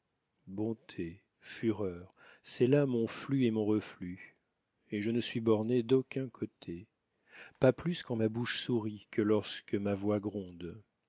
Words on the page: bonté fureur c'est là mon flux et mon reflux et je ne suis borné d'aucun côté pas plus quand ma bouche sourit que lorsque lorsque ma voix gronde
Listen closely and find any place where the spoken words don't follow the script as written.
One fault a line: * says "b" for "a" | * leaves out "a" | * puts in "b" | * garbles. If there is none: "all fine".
* leaves out "lorsque"